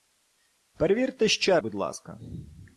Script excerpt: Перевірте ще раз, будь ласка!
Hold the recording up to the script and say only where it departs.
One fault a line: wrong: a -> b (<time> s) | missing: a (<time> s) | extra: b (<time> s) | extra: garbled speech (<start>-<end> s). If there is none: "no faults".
missing: раз (1.6 s)